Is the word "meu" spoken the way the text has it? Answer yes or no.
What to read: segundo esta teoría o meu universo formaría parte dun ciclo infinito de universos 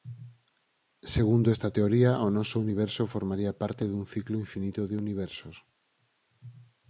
no